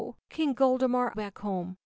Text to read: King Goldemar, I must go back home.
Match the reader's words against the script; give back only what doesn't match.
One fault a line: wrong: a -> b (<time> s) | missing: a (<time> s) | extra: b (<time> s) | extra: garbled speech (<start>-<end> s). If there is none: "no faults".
missing: I must go (1.1 s)